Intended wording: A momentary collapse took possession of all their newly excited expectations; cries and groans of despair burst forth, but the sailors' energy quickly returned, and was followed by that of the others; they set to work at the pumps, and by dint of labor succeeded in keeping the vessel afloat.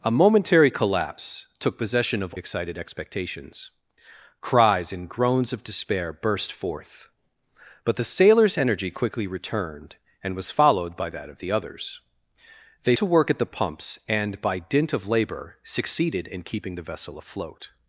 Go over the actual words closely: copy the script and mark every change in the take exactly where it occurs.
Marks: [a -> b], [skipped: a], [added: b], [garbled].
A momentary collapse took possession of [skipped: all their newly] excited expectations; cries and groans of despair burst forth, but the sailors' energy quickly returned, and was followed by that of the others; they [skipped: set] to work at the pumps, and by dint of labor succeeded in keeping the vessel afloat.